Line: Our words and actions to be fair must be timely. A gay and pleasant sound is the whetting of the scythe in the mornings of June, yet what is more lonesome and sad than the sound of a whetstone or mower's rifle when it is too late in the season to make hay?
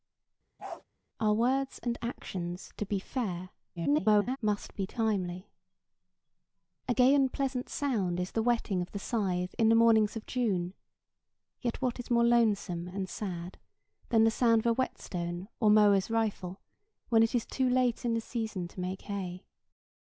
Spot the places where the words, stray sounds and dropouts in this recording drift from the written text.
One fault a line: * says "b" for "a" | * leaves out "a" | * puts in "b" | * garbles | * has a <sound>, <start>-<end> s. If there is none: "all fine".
* has a bark, 0.6-0.8 s
* garbles